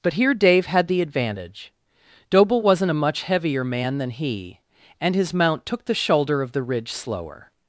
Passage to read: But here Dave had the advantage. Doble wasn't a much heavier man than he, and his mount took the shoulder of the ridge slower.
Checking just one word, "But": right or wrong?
right